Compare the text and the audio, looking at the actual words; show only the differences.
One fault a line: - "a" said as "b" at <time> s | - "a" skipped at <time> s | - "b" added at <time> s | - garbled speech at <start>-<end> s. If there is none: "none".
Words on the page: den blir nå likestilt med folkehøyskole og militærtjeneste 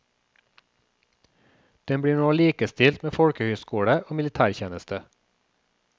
none